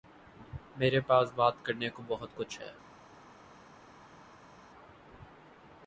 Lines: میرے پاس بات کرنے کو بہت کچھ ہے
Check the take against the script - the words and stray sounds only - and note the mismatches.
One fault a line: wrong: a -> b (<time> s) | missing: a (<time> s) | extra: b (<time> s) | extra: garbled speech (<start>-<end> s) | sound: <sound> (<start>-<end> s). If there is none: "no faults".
no faults